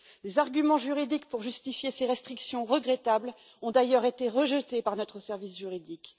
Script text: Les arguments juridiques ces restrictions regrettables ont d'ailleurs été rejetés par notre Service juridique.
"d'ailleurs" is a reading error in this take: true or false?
false